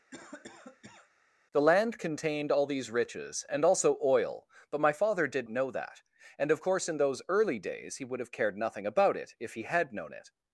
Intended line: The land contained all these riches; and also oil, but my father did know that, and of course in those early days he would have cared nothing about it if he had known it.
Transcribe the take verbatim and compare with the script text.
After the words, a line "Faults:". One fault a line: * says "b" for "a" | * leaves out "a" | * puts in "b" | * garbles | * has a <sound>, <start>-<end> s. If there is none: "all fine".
The land contained all these riches; and also oil, but my father did know that, and of course in those early days he would have cared nothing about it if he had known it.
Faults:
* has a cough, 0.1-1.1 s